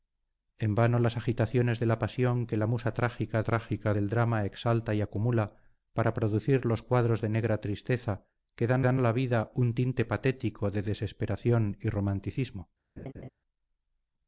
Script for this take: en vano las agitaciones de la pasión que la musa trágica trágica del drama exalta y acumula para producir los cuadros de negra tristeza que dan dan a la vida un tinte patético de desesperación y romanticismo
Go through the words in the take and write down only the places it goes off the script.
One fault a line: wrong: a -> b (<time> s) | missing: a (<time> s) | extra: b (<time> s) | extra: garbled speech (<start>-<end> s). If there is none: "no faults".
no faults